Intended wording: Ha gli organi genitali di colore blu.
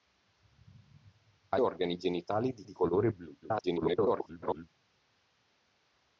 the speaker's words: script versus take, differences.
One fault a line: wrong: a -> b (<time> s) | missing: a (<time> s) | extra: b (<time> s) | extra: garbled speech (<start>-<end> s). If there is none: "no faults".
missing: gli (1.6 s)
extra: di (2.6 s)
extra: garbled speech (3.4-4.7 s)